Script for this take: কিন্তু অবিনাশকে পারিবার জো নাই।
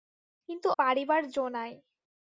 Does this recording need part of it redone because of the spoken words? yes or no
yes